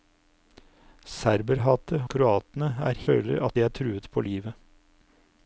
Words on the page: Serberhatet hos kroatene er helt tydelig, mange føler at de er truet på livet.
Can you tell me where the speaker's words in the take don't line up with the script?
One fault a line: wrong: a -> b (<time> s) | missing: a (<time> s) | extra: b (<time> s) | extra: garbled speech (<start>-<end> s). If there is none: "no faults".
missing: hos (2.0 s)
missing: helt tydelig mange (3.0 s)